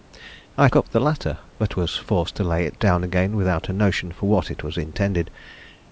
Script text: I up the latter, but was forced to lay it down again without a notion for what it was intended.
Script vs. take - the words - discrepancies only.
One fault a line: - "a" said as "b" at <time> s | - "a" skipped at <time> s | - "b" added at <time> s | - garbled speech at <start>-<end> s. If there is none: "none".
none